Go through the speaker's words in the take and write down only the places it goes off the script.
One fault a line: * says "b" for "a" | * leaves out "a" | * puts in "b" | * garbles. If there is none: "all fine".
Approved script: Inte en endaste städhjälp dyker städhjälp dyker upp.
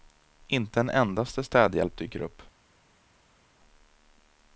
* leaves out "städhjälp dyker"